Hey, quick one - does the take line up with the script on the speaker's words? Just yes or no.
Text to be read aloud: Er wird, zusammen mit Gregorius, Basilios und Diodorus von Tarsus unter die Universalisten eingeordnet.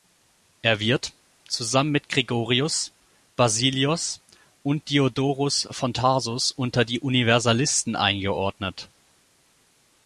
yes